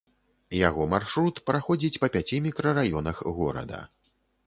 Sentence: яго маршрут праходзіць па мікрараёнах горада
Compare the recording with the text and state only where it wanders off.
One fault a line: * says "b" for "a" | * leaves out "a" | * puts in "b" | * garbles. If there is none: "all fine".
* puts in "пяці"